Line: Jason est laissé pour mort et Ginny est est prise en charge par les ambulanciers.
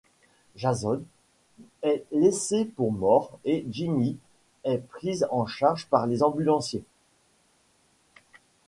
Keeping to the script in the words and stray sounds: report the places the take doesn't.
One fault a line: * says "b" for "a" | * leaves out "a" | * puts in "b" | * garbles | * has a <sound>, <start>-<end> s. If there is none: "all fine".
* leaves out "est"